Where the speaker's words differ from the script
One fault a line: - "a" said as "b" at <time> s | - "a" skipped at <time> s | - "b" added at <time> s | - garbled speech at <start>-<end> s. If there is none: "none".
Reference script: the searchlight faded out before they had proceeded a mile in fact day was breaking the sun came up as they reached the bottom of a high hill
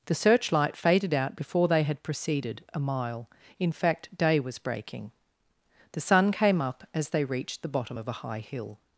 none